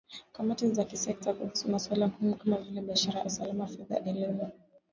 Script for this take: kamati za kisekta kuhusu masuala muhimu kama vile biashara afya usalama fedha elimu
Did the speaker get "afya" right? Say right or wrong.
wrong